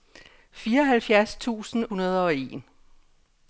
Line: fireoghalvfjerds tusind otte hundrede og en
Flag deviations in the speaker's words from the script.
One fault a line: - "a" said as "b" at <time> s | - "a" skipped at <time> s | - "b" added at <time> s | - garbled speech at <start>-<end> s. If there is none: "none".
- "otte" skipped at 1.9 s